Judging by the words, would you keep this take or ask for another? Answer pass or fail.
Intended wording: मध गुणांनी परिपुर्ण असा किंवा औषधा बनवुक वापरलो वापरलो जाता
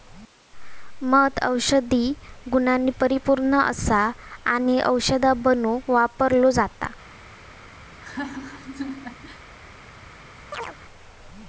fail